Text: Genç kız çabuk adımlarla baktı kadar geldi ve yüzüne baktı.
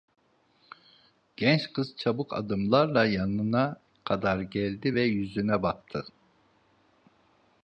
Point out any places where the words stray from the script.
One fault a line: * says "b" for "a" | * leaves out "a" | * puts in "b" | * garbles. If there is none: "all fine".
* says "yanına" for "baktı"